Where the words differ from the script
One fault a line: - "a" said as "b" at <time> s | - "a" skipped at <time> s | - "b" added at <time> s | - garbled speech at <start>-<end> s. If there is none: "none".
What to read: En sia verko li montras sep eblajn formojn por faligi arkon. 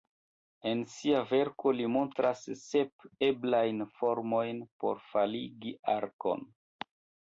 none